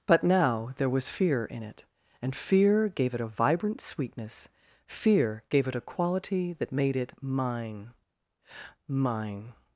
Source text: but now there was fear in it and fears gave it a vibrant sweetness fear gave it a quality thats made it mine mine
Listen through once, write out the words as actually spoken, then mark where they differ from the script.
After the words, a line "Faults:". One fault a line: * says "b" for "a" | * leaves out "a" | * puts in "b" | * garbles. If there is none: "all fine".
but now there was fear in it and fear gave it a vibrant sweetness fear gave it a quality that made it mine mine
Faults:
* says "fear" for "fears"
* says "that" for "thats"